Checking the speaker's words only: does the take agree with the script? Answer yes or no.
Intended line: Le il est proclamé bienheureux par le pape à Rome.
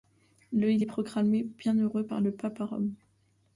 yes